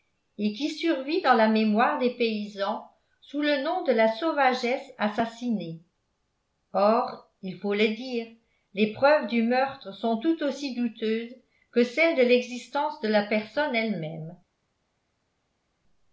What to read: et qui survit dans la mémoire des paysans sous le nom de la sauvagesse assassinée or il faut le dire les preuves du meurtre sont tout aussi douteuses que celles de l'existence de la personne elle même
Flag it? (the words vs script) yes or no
no